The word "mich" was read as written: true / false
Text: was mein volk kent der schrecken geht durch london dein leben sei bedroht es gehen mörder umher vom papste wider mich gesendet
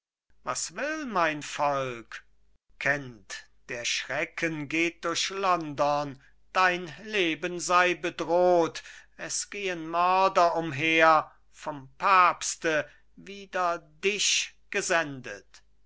false